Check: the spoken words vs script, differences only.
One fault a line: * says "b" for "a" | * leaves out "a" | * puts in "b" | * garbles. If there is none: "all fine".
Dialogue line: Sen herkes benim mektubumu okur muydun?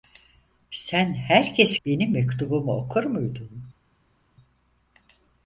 all fine